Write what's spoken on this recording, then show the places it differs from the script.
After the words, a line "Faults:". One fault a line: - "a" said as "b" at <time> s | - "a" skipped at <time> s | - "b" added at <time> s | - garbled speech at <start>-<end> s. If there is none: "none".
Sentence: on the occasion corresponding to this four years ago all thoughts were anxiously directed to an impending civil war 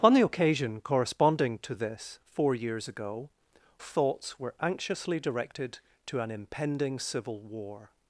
on the occasion corresponding to this four years ago thoughts were anxiously directed to an impending civil war
Faults:
- "all" skipped at 3.3 s